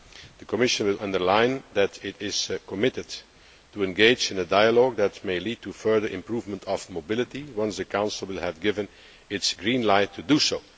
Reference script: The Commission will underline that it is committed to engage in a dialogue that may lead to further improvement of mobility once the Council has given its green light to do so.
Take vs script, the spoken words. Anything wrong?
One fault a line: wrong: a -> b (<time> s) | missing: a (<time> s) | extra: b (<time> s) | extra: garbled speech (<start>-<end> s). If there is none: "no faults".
no faults